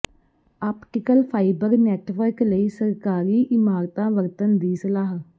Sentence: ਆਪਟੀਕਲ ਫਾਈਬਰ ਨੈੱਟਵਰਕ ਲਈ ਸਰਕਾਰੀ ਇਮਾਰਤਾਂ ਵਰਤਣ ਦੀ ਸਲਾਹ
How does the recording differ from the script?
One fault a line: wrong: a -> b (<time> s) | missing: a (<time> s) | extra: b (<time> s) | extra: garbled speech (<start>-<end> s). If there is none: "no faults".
no faults